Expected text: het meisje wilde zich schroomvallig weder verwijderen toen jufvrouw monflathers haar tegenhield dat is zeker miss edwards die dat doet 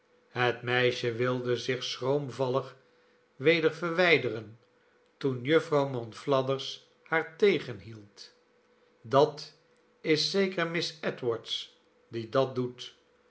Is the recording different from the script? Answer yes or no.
no